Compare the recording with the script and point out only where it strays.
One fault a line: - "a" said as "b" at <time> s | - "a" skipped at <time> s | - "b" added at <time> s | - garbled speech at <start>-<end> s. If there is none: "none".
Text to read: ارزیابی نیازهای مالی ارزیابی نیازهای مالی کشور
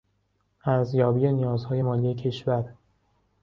- "ارزیابی نیازهای مالی" skipped at 2.1 s